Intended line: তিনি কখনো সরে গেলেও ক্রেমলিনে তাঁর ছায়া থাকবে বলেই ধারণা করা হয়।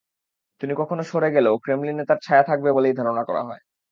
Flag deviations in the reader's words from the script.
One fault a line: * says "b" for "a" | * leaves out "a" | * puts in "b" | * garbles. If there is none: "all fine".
all fine